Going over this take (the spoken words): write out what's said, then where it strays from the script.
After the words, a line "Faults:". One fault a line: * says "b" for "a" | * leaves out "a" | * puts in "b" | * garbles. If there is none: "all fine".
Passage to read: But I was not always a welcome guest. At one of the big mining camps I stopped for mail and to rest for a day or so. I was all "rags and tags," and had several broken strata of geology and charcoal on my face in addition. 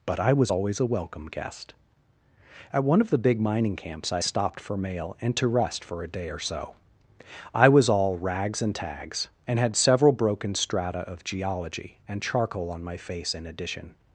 But I was always a welcome guest. At one of the big mining camps I stopped for mail and to rest for a day or so. I was all "rags and tags," and had several broken strata of geology and charcoal on my face in addition.
Faults:
* leaves out "not"